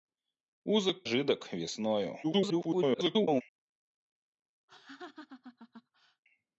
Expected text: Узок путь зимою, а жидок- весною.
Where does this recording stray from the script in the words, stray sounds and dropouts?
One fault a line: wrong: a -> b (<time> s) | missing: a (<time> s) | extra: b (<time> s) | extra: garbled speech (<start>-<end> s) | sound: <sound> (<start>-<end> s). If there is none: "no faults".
missing: путь зимою а (1.1 s)
extra: garbled speech (2.2-3.4 s)
sound: laugh (4.7-6.2 s)